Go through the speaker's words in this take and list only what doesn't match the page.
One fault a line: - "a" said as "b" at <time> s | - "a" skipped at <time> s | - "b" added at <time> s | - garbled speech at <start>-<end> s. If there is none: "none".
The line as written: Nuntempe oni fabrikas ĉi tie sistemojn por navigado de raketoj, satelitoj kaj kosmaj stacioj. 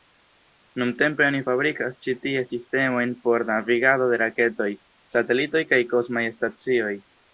none